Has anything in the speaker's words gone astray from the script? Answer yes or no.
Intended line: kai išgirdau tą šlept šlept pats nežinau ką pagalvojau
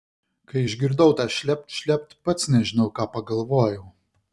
no